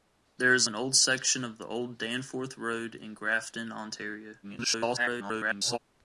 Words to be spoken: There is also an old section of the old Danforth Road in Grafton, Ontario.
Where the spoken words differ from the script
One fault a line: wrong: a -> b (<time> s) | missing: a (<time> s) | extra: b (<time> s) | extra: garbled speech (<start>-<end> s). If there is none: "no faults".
missing: also (0.7 s)
extra: garbled speech (4.4-5.8 s)